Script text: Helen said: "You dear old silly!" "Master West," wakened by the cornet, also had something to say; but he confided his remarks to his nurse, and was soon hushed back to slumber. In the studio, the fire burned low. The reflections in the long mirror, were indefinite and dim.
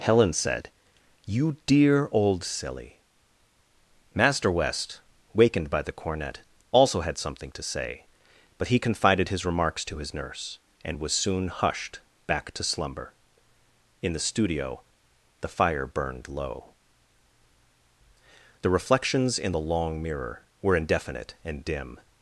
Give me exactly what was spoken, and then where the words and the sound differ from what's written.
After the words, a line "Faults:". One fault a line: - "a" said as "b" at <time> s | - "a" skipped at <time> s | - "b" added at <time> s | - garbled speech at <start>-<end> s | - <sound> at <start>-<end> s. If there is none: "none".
Helen said: "You dear old silly!" "Master West," wakened by the cornet, also had something to say; but he confided his remarks to his nurse, and was soon hushed back to slumber. In the studio, the fire burned low. The reflections in the long mirror, were indefinite and dim.
Faults:
none